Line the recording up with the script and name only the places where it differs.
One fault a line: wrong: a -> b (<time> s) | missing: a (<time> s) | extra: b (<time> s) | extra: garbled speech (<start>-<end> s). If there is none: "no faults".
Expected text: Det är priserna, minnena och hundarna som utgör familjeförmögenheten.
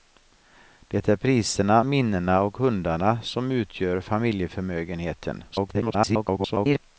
extra: garbled speech (5.5-6.8 s)